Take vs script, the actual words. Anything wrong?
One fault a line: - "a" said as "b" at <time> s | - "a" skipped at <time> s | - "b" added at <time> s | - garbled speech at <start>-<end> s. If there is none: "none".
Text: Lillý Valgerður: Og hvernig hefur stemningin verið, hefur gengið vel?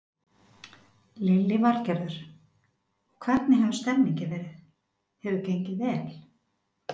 none